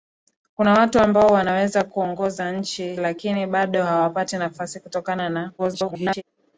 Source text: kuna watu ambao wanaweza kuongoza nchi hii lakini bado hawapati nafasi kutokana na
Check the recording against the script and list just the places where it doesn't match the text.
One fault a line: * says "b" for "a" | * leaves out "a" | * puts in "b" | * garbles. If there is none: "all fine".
* leaves out "hii"
* garbles